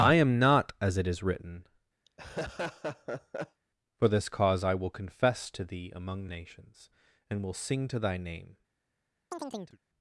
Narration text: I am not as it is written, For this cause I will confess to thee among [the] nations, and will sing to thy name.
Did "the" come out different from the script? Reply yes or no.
yes